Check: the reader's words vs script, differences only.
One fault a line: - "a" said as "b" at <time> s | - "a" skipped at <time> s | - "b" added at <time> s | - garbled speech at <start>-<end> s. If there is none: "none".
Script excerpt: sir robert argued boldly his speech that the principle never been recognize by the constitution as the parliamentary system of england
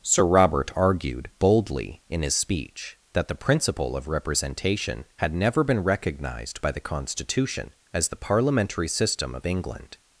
- "in" added at 2.1 s
- "of representation had" added at 4.0 s
- "recognize" said as "recognized" at 5.8 s